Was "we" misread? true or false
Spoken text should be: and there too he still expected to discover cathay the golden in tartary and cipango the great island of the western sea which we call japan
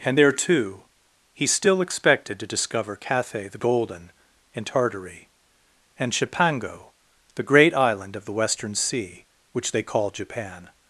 true